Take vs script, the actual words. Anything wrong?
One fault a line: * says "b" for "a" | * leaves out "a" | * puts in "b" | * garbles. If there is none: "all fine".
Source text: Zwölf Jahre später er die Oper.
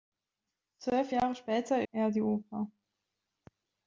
all fine